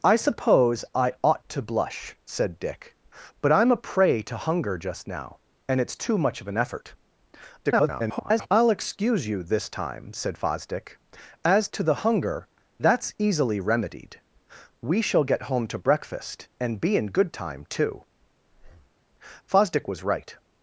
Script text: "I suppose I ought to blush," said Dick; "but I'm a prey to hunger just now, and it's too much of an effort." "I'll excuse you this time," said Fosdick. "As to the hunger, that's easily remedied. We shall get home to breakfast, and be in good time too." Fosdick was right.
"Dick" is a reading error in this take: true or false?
false